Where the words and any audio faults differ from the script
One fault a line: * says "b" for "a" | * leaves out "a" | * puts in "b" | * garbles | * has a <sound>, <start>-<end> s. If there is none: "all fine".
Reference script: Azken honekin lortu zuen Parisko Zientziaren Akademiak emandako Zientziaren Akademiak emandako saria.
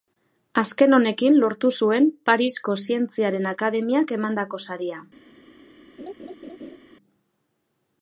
* leaves out "Zientziaren Akademiak emandako"
* has a laugh, 6.0-6.8 s